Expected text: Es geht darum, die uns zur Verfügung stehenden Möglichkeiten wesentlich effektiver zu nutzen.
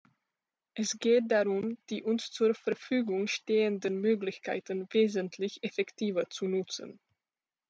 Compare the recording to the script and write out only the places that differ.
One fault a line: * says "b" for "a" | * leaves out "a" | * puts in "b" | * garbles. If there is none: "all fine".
all fine